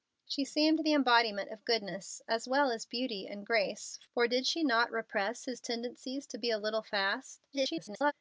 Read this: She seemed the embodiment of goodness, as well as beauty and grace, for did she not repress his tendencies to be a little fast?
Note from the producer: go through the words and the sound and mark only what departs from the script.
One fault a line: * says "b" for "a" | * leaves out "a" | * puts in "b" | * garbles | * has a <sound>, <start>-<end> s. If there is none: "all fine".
* garbles